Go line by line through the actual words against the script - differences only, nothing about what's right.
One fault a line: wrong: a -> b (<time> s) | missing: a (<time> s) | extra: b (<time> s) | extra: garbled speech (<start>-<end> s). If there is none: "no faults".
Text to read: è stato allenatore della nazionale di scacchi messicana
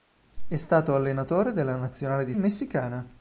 missing: scacchi (2.3 s)